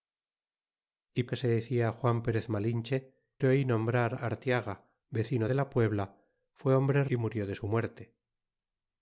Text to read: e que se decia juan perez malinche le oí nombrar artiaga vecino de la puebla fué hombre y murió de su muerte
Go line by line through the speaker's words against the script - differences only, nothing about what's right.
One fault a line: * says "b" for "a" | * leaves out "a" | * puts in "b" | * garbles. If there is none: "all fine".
all fine